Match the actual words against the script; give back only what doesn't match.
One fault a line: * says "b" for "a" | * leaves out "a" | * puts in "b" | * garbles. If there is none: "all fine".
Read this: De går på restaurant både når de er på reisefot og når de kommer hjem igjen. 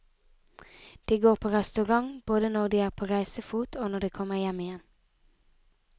all fine